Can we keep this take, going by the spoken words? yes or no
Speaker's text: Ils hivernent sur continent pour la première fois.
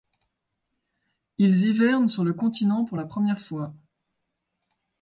no